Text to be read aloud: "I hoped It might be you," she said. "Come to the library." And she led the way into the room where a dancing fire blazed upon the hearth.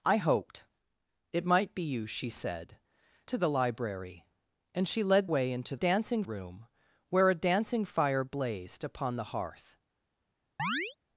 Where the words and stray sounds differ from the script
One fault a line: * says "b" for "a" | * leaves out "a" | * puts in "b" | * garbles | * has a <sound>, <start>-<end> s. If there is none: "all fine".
* leaves out "Come"
* leaves out "the"
* says "dancing" for "the"
* has a chirp, 10.6-11.0 s